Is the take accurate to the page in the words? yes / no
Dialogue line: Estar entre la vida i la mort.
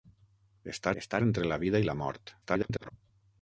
no